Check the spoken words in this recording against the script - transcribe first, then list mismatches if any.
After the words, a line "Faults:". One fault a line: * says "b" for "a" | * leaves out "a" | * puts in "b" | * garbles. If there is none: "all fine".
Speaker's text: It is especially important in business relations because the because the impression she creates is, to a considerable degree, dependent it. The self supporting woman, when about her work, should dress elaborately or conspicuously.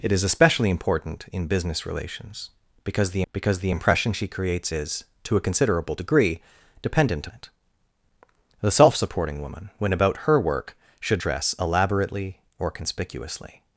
It is especially important in business relations because the because the impression she creates is, to a considerable degree, dependent it. The self supporting woman, when about her work, should dress elaborately or conspicuously.
Faults:
all fine